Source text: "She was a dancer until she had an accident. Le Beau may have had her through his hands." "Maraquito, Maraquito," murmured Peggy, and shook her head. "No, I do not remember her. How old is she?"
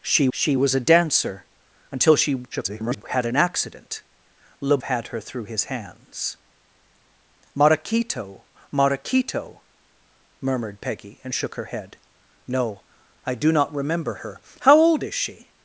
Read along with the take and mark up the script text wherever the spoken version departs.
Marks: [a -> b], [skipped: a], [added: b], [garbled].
"She [added: she] was a dancer until she [garbled] had an accident. Le [skipped: Beau may have] had her through his hands." "Maraquito, Maraquito," murmured Peggy, and shook her head. "No, I do not remember her. How old is she?"